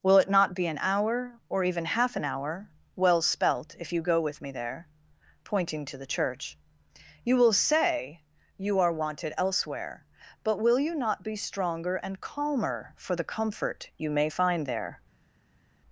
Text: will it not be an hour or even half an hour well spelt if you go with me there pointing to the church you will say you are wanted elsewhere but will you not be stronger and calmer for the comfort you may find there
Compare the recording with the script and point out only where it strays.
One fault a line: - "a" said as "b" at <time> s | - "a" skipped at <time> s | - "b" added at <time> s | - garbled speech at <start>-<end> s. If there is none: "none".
none